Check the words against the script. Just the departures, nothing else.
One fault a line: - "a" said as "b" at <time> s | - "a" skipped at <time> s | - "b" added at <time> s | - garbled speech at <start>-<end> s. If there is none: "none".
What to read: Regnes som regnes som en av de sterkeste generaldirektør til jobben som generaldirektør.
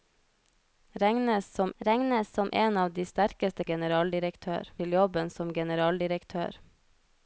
none